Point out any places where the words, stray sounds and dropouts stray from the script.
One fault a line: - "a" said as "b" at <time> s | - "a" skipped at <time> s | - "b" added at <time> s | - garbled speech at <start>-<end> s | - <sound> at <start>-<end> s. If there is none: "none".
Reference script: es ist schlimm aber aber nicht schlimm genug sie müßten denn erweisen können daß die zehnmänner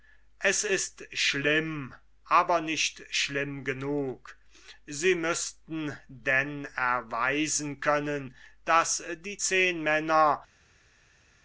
- "aber" skipped at 2.6 s